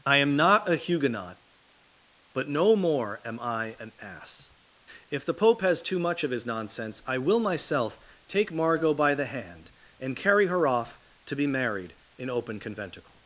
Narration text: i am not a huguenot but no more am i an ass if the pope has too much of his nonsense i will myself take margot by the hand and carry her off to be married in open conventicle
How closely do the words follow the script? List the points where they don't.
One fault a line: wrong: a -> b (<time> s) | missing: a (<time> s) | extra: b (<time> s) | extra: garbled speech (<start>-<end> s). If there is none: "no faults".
no faults